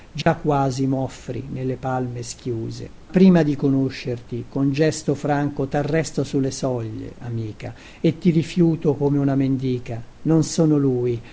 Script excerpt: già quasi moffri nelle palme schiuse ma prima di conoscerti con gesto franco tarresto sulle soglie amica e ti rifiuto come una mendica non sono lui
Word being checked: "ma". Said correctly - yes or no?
no